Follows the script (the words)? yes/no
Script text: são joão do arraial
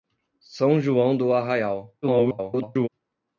no